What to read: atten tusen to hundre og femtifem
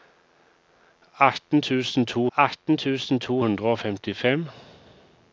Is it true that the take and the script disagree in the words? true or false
true